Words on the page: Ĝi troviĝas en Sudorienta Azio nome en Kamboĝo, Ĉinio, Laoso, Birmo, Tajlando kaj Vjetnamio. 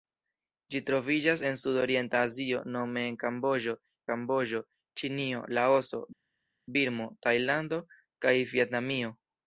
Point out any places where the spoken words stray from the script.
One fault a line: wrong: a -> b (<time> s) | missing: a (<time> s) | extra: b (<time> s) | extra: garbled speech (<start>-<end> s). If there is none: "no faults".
extra: Kamboĝo (4.1 s)